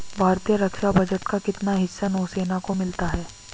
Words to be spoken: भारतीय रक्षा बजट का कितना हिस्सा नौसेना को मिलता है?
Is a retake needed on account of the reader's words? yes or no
no